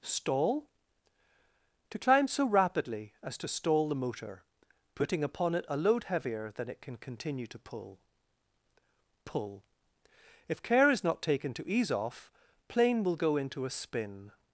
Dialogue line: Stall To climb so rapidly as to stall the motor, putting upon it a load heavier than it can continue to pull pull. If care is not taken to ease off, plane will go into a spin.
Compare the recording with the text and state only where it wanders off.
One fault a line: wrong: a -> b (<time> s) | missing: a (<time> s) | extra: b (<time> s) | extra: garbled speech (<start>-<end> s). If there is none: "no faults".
no faults